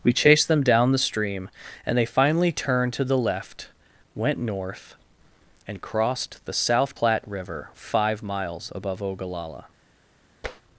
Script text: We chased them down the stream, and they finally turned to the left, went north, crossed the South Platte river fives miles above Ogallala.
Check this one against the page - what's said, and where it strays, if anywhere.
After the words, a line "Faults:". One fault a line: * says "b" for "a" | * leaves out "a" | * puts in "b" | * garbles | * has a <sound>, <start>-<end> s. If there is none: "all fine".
We chased them down the stream, and they finally turned to the left, went north, and crossed the South Platte river five miles above Ogallala.
Faults:
* puts in "and"
* says "five" for "fives"
* has a tap, 10.4-10.6 s